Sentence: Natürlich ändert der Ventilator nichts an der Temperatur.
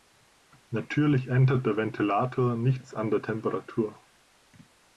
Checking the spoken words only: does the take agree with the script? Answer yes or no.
yes